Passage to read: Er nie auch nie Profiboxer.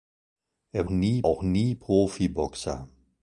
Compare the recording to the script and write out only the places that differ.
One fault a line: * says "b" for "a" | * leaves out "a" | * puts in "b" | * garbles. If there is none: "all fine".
all fine